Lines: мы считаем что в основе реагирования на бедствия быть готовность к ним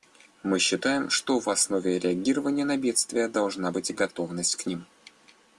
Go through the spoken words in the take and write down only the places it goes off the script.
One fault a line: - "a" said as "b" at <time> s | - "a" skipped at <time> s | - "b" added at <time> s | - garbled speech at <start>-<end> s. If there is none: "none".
- "должна" added at 3.3 s